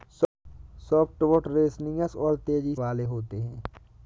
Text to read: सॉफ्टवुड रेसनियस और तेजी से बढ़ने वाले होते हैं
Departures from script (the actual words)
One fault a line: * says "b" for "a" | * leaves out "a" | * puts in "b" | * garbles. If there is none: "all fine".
* leaves out "से बढ़ने"